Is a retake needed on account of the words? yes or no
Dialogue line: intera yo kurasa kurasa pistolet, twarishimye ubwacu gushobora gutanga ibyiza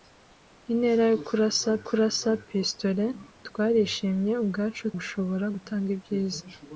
no